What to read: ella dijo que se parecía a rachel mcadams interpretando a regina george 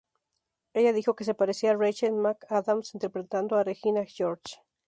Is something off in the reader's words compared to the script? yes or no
no